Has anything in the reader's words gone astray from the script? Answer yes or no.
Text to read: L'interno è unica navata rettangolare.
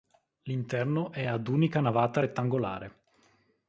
yes